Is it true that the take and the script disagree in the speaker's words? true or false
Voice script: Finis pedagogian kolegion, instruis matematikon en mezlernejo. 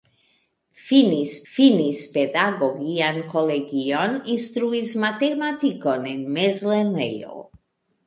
true